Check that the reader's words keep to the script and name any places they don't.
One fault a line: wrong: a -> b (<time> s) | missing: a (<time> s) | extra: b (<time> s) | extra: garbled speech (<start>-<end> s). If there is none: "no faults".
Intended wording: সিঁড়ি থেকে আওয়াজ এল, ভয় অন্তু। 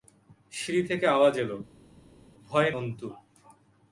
no faults